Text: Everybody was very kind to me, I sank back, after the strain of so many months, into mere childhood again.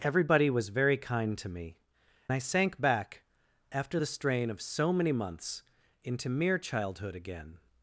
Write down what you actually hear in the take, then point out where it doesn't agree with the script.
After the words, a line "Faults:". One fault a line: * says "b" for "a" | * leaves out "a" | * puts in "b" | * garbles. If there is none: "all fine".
Everybody was very kind to me, I sank back, after the strain of so many months, into mere childhood again.
Faults:
all fine